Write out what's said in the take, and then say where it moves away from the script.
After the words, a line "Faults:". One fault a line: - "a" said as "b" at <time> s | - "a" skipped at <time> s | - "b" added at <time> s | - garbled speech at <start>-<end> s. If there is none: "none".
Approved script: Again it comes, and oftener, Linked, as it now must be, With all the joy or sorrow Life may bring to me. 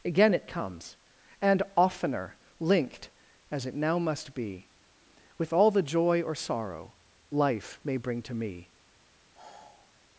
Again it comes, and oftener, Linked, as it now must be, With all the joy or sorrow Life may bring to me.
Faults:
none